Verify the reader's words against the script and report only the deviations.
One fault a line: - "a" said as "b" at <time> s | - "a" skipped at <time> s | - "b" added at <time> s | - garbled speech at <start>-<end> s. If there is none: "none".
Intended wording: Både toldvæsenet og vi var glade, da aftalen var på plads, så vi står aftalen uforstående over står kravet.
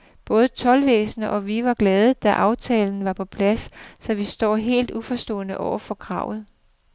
- "aftalen" said as "helt" at 4.6 s
- "står" said as "for" at 5.8 s